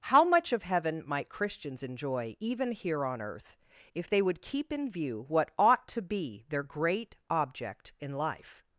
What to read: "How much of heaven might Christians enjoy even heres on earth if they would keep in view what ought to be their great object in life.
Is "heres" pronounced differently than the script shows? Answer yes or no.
yes